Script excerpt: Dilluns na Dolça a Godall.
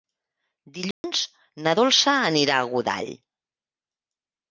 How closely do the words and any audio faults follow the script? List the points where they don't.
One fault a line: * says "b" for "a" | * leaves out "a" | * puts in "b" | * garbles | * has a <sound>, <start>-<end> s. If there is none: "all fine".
* has a dropout, 0.9-1.0 s
* puts in "anirà"